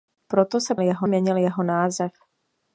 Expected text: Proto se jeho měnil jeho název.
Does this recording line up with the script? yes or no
yes